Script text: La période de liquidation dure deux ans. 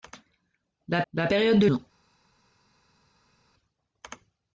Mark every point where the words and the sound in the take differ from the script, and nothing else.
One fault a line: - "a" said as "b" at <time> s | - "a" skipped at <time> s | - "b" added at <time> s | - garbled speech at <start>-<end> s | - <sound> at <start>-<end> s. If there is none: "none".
- "la" added at 1.1 s
- "liquidation dure deux" skipped at 1.7 s